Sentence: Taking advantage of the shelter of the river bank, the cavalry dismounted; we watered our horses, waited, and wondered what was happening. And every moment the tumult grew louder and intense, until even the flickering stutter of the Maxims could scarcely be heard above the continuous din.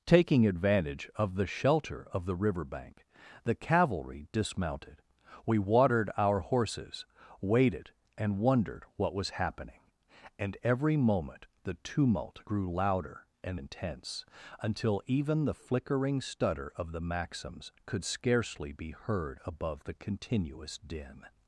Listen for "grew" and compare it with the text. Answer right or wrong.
right